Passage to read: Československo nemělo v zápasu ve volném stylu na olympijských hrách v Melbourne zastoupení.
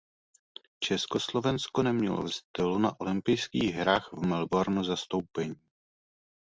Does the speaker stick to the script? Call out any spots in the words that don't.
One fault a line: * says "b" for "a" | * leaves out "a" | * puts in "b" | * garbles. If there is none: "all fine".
* leaves out "zápasu ve volném"